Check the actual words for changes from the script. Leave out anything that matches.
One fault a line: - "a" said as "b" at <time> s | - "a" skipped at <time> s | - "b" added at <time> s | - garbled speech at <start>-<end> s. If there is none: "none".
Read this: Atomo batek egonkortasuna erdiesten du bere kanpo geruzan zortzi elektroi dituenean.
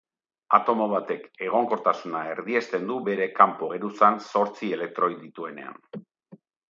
none